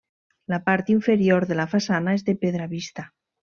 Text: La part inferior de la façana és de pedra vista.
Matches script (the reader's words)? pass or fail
pass